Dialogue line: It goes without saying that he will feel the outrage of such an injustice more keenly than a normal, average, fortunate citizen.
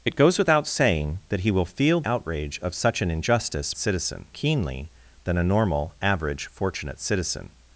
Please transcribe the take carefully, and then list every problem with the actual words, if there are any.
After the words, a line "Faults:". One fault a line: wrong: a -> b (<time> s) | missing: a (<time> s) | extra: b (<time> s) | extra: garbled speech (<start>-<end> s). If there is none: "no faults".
It goes without saying that he will feel outrage of such an injustice citizen keenly than a normal, average, fortunate citizen.
Faults:
missing: the (2.0 s)
wrong: more -> citizen (3.8 s)